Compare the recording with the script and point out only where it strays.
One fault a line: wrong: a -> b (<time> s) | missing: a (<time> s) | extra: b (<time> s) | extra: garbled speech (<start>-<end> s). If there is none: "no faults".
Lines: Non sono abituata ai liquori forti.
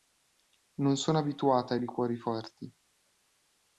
no faults